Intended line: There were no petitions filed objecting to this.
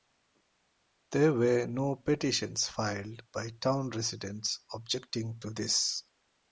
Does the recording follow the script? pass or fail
fail